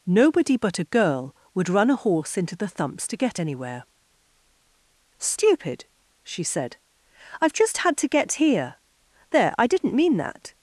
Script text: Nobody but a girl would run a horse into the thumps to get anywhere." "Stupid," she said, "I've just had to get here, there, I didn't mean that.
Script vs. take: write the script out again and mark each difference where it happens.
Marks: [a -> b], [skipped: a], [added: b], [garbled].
Nobody but a girl would run a horse into the thumps to get anywhere." "Stupid," she said, "I've just had to get here, there, I didn't mean that.